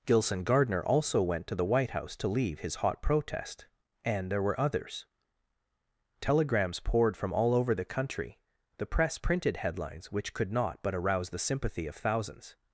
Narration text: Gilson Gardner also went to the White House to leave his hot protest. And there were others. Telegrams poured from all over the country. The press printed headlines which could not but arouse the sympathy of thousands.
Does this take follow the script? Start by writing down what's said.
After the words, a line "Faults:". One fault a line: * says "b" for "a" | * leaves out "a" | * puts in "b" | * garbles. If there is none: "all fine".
Gilson Gardner also went to the White House to leave his hot protest. And there were others. Telegrams poured from all over the country. The press printed headlines which could not but arouse the sympathy of thousands.
Faults:
all fine